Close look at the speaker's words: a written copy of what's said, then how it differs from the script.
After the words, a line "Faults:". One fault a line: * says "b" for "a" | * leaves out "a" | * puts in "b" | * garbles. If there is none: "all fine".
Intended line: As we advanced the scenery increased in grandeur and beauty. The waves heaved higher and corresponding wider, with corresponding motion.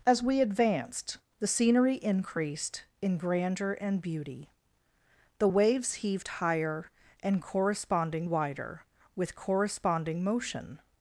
As we advanced the scenery increased in grandeur and beauty. The waves heaved higher and corresponding wider, with corresponding motion.
Faults:
all fine